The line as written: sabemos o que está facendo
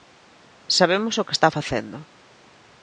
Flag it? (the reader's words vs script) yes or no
no